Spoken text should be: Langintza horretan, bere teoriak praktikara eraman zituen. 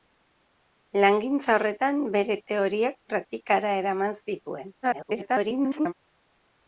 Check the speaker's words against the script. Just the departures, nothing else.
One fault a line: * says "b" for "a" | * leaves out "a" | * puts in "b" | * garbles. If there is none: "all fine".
* garbles